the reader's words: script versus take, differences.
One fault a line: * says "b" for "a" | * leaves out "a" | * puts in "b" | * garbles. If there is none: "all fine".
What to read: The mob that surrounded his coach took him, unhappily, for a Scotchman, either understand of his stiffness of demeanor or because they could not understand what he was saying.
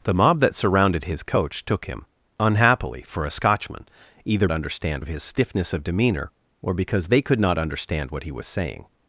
all fine